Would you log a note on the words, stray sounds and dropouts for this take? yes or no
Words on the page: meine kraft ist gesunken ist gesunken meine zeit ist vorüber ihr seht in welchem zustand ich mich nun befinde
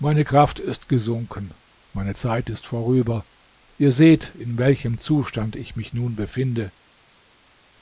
yes